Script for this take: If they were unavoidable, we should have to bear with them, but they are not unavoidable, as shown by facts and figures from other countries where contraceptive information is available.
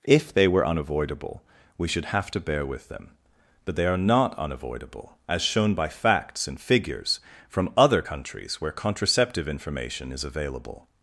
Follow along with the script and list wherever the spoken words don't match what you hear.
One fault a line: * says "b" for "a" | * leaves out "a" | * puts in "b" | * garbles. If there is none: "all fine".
all fine